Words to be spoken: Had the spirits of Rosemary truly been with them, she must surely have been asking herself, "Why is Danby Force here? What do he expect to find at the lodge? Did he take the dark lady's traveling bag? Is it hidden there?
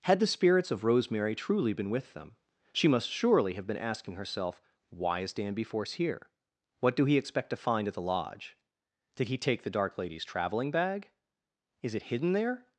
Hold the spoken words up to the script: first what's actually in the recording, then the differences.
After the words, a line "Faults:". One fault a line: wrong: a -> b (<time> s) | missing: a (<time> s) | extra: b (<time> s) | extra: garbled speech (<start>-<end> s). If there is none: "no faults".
Had the spirits of Rosemary truly been with them, she must surely have been asking herself, "Why is Danby Force here? What do he expect to find at the lodge? Did he take the dark lady's traveling bag? Is it hidden there?
Faults:
no faults